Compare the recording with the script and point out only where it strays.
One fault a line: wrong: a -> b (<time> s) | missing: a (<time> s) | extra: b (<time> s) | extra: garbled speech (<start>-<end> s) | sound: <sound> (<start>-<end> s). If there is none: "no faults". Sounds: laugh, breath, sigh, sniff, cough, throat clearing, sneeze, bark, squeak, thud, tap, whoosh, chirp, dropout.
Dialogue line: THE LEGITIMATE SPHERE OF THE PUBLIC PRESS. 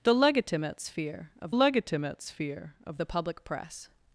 extra: LEGITIMATE SPHERE OF (1.5 s)